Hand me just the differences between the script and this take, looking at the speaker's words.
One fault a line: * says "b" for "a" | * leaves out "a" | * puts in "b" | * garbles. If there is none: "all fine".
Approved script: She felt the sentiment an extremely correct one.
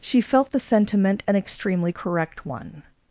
all fine